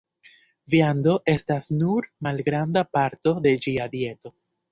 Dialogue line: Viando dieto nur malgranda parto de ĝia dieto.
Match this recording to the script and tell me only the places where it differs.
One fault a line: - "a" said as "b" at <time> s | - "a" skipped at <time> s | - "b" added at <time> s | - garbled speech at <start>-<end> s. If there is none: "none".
- "dieto" said as "estas" at 1.3 s